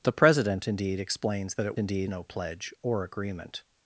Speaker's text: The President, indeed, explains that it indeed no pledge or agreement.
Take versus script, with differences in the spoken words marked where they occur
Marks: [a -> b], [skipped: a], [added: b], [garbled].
The President, indeed, explains that it indeed no pledge or agreement.